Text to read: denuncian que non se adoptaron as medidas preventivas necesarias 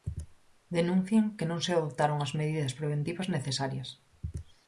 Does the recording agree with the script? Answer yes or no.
yes